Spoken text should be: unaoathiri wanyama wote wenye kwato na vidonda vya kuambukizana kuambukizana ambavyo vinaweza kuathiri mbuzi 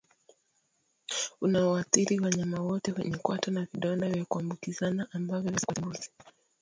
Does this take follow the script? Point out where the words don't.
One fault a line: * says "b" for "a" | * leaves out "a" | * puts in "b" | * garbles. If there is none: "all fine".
* leaves out "kuambukizana"